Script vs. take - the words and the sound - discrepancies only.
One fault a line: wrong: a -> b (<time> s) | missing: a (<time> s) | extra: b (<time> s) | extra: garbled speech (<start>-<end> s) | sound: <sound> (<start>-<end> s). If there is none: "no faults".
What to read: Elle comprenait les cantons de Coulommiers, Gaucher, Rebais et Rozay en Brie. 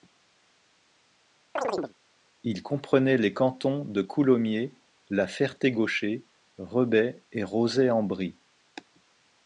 sound: chirp (1.6-1.9 s)
wrong: Elle -> Il (2.4 s)
extra: la Ferté (5.1 s)